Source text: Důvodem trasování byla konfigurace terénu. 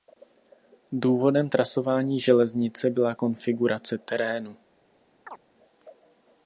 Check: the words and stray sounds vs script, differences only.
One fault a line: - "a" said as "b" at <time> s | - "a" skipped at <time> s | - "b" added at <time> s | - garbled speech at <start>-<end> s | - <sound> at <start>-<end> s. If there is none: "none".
- "železnice" added at 2.2 s
- chirp at 5.3-5.4 s